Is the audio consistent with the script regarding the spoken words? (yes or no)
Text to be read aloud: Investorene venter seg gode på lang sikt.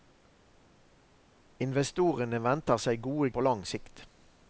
yes